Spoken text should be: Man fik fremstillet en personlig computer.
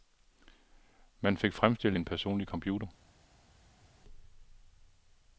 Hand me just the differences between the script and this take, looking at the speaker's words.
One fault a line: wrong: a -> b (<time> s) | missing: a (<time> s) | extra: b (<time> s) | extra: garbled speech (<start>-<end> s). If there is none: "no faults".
no faults